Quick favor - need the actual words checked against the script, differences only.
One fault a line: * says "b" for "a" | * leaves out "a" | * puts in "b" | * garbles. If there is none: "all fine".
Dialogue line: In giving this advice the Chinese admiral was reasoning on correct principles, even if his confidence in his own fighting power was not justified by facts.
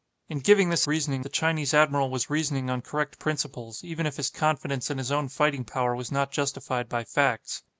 * says "reasoning" for "advice"